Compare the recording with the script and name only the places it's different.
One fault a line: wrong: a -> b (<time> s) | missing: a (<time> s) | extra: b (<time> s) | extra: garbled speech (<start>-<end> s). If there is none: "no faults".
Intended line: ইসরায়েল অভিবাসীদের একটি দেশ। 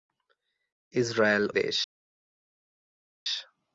missing: অভিবাসীদের একটি (1.4 s)